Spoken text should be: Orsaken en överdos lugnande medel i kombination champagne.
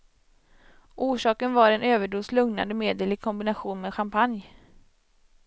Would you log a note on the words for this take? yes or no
yes